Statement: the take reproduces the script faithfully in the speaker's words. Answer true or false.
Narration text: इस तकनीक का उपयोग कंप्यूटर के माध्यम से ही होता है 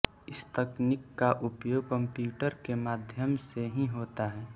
true